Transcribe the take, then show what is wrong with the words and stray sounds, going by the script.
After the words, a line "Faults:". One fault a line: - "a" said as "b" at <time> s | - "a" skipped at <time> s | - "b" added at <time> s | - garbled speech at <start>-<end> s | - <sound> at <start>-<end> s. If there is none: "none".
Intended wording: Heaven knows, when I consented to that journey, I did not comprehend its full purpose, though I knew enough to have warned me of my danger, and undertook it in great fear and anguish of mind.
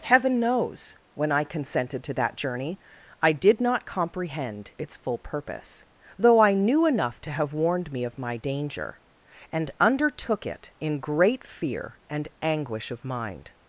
Heaven knows, when I consented to that journey, I did not comprehend its full purpose, though I knew enough to have warned me of my danger, and undertook it in great fear and anguish of mind.
Faults:
none